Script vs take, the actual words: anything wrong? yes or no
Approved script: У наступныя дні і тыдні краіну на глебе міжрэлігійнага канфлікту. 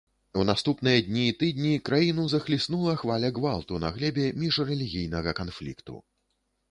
yes